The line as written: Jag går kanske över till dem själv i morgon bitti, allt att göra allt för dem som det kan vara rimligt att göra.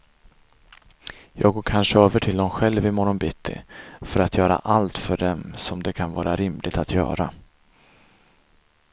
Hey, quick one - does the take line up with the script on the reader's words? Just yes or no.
no